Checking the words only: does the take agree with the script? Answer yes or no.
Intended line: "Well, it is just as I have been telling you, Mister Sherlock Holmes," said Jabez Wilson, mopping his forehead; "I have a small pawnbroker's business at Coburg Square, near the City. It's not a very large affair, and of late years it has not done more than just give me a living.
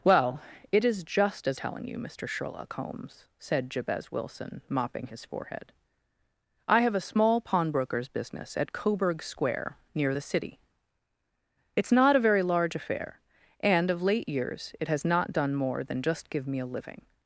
no